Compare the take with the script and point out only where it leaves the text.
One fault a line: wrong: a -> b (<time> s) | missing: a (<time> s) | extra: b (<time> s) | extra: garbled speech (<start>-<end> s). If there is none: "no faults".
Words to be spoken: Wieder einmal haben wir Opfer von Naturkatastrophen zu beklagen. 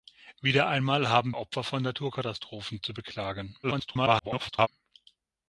missing: wir (1.4 s)
extra: garbled speech (3.6-4.7 s)